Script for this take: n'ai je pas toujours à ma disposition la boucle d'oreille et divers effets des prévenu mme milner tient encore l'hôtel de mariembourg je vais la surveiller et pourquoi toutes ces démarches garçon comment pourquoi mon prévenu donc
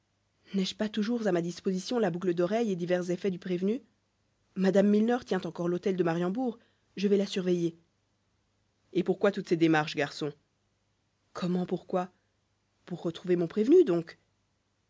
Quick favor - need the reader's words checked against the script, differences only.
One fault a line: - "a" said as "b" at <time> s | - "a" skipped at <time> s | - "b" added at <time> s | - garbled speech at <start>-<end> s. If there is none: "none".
- "des" said as "du" at 3.3 s
- "pour retrouver" added at 12.8 s